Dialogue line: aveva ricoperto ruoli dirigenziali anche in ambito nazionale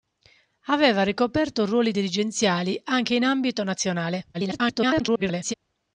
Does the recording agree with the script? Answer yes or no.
no